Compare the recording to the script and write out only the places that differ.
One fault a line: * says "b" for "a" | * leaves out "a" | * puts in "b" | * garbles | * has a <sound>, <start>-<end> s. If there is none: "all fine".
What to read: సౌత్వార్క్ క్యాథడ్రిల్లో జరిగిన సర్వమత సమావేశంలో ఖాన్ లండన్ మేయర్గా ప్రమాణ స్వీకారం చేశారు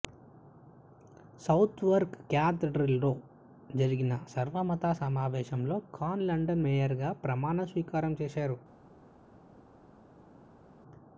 all fine